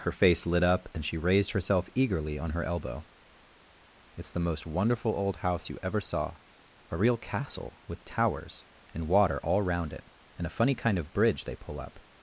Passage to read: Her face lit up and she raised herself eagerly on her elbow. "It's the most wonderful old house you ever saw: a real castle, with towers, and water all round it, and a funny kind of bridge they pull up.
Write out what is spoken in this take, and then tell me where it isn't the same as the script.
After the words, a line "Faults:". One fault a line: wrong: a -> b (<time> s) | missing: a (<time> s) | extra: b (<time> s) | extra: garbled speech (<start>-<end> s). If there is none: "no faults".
Her face lit up and she raised herself eagerly on her elbow. "It's the most wonderful old house you ever saw: a real castle, with towers, and water all round it, and a funny kind of bridge they pull up.
Faults:
no faults